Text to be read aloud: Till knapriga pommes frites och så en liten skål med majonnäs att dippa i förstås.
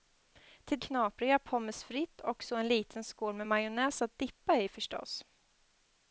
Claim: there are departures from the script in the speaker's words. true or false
false